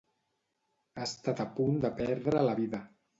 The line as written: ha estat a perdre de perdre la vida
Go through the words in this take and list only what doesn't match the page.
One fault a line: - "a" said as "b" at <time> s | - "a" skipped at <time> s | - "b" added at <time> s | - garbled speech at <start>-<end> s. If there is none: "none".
- "perdre" said as "punt" at 1.6 s